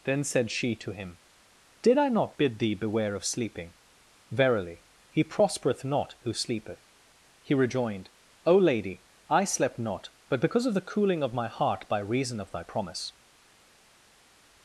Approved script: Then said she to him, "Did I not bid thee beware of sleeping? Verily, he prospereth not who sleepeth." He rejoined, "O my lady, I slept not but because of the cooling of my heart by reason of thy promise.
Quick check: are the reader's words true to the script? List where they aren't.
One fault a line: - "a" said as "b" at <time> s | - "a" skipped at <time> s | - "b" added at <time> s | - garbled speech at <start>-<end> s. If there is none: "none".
- "my" skipped at 8.6 s